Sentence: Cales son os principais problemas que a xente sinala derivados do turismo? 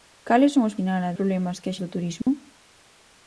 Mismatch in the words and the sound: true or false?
true